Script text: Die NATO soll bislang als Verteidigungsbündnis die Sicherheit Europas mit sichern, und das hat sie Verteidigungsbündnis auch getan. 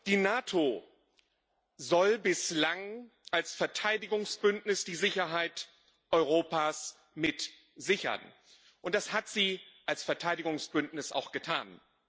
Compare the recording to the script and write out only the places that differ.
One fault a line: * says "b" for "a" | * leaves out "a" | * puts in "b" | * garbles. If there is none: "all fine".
* puts in "als"